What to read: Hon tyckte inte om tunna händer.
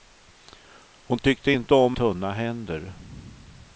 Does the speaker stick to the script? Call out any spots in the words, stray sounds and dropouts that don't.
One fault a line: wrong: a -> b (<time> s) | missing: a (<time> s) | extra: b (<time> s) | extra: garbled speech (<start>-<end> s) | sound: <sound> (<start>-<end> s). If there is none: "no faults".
no faults